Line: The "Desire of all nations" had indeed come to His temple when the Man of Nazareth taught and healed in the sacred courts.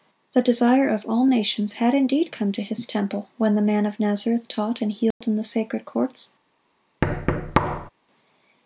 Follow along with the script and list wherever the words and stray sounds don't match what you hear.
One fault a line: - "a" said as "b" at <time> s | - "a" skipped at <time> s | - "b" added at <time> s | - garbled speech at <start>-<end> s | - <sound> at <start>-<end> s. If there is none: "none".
- dropout at 5.1-5.2 s
- thud at 7.0-7.9 s